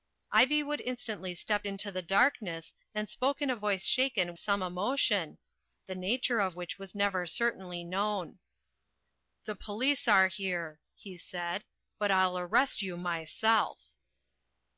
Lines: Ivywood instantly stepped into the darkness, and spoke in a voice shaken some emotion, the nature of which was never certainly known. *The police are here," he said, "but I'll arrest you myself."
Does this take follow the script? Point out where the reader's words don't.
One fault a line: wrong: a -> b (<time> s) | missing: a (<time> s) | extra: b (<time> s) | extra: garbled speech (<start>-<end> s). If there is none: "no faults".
no faults